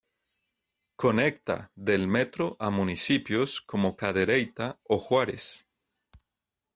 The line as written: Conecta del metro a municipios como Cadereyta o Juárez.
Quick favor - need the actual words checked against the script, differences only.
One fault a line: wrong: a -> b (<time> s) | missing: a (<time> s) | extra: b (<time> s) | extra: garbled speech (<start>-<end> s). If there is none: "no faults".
no faults